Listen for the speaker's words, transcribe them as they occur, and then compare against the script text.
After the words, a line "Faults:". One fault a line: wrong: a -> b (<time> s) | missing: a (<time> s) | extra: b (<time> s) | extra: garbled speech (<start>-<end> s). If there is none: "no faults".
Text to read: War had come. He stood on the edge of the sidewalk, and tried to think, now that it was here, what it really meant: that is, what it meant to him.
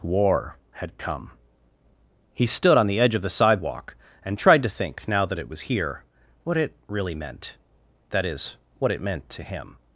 War had come. He stood on the edge of the sidewalk, and tried to think, now that it was here, what it really meant: that is, what it meant to him.
Faults:
no faults